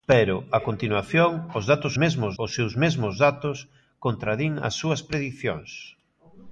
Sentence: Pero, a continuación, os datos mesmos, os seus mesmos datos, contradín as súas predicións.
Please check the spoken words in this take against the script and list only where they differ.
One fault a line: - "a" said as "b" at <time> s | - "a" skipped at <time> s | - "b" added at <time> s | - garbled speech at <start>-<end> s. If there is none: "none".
none